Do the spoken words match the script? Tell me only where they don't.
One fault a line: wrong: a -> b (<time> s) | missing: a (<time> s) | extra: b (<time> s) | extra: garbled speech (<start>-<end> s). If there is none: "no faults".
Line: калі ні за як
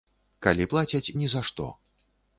extra: плацяць (0.7 s)
wrong: як -> што (1.5 s)